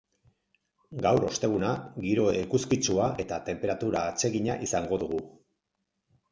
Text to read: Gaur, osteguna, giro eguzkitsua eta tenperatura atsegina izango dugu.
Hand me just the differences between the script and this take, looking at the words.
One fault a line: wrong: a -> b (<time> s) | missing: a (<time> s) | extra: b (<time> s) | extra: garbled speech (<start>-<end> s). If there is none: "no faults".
no faults